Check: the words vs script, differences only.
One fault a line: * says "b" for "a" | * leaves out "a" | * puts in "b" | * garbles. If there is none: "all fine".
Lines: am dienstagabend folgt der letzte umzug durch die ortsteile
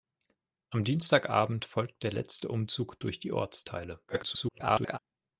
* garbles